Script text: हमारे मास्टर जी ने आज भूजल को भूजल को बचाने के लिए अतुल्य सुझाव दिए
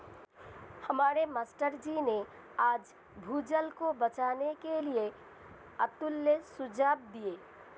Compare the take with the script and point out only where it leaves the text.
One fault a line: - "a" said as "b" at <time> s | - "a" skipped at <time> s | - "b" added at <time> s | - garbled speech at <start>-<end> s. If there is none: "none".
- "भूजल को" skipped at 3.9 s